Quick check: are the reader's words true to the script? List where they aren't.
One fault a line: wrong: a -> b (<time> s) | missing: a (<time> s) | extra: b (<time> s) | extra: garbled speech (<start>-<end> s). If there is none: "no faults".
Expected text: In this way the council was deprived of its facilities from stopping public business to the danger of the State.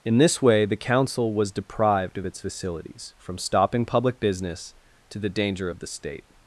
no faults